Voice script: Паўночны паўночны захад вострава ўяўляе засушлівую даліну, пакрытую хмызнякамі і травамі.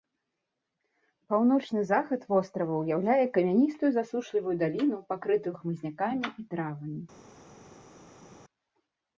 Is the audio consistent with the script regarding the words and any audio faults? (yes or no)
no